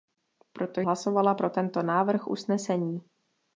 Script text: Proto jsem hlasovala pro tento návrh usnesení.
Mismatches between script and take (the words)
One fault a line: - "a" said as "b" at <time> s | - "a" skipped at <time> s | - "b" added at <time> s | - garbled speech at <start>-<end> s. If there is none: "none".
- "jsem" skipped at 0.8 s